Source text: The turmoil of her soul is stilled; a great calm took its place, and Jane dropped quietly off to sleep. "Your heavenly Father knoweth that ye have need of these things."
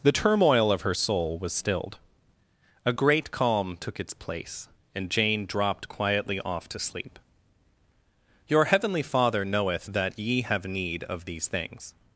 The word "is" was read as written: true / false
false